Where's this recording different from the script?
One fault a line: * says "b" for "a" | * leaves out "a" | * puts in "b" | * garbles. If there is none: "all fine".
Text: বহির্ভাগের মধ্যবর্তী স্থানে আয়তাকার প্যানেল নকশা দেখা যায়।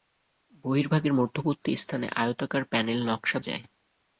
* leaves out "দেখা"